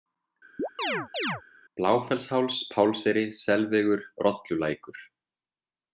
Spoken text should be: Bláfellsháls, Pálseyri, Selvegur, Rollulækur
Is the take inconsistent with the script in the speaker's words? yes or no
no